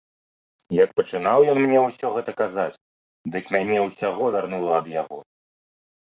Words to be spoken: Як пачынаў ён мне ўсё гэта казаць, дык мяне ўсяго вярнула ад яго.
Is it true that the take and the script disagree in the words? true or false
false